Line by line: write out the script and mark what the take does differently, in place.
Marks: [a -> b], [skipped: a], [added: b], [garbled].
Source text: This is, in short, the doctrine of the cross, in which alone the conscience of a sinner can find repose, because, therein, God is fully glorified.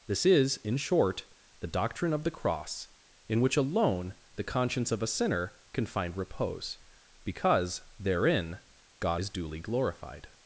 This is, in short, the doctrine of the cross, in which alone the conscience of a sinner can find repose, because, therein, God is [fully -> duly] glorified.